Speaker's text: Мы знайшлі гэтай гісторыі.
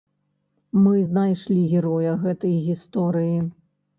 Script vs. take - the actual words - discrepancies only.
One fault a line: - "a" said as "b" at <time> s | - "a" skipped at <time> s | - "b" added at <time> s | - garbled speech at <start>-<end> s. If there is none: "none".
- "героя" added at 1.7 s